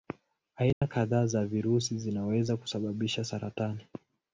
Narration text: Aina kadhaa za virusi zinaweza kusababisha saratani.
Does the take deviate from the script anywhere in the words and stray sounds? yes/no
yes